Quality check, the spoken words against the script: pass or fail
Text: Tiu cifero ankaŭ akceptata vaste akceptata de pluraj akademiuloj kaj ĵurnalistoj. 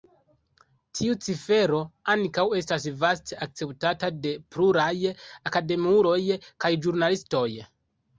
fail